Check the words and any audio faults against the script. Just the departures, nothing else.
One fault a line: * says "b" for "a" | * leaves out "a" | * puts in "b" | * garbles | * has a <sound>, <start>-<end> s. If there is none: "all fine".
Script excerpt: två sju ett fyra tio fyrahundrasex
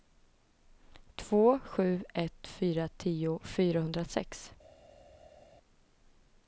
all fine